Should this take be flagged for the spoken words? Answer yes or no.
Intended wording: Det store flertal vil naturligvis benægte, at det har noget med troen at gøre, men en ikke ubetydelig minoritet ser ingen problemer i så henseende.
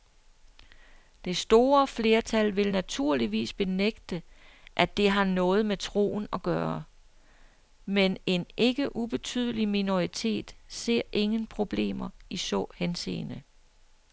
no